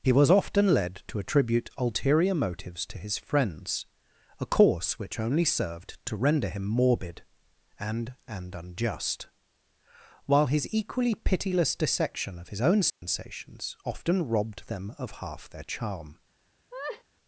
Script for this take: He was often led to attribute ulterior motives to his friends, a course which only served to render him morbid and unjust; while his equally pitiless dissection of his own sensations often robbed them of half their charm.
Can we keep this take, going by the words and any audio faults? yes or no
no